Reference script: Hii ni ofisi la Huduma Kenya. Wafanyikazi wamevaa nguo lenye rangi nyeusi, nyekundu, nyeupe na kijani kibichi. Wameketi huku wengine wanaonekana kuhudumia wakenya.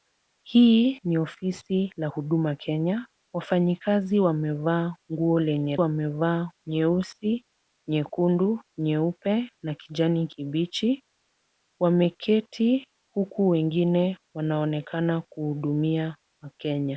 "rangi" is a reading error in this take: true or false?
true